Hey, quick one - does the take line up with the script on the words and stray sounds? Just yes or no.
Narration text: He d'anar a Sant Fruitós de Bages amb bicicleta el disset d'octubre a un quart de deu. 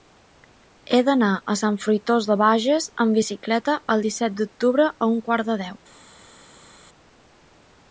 yes